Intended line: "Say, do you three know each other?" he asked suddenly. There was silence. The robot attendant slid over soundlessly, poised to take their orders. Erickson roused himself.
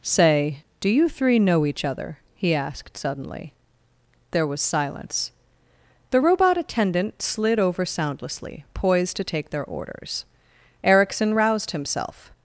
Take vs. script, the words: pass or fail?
pass